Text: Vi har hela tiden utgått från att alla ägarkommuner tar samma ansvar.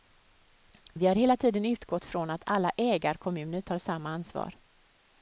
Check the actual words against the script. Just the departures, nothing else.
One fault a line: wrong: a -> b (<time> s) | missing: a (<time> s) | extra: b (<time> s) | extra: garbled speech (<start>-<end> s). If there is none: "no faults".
no faults